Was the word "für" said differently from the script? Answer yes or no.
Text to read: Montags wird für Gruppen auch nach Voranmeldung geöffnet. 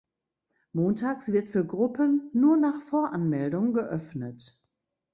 no